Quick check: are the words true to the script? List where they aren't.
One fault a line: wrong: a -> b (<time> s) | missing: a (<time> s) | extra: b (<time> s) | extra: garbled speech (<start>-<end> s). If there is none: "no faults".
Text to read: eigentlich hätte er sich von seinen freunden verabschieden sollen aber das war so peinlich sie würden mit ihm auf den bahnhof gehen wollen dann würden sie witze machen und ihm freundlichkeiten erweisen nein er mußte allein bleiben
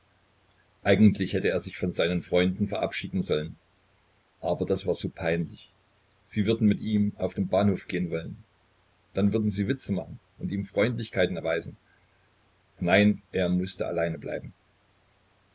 no faults